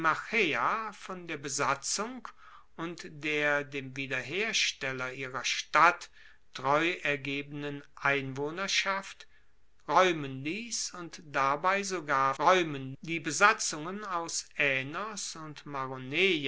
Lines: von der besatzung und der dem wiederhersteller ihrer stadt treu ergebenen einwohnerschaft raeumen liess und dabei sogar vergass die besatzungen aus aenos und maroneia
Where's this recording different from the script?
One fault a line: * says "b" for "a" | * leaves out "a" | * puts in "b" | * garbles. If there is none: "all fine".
* says "raeumen" for "vergass"